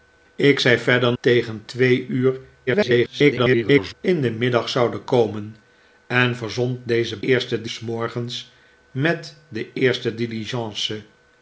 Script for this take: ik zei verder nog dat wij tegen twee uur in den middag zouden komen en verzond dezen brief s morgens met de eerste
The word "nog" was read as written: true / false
false